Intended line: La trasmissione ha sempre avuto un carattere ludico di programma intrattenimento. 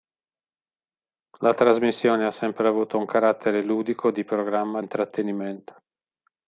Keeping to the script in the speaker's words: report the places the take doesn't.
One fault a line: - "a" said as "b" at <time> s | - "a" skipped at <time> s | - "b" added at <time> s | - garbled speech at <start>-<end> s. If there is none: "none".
none